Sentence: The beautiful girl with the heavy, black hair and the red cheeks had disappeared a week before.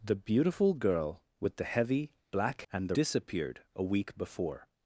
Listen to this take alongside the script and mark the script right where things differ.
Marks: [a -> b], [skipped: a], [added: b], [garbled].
The beautiful girl with the heavy, black [skipped: hair] and the [skipped: red cheeks had] disappeared a week before.